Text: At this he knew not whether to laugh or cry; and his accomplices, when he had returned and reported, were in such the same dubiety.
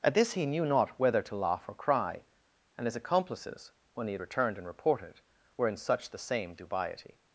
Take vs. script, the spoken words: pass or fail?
pass